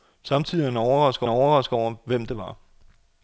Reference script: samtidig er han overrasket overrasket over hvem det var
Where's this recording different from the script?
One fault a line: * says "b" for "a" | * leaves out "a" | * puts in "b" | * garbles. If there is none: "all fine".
all fine